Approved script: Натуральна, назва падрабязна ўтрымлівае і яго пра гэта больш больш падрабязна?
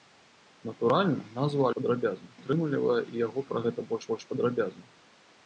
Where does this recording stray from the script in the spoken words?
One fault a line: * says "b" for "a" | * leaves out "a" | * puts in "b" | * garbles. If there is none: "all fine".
all fine